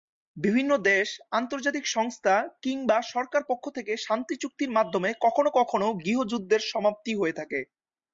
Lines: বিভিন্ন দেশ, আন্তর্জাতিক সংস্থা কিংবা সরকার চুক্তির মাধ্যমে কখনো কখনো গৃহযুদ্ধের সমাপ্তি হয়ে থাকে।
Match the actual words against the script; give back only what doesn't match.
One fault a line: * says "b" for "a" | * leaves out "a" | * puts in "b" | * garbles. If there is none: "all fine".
* puts in "পক্ষ থেকে শান্তি"